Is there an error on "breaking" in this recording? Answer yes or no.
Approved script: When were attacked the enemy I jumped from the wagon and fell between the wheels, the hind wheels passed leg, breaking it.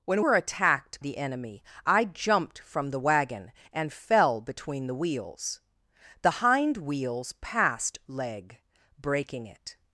no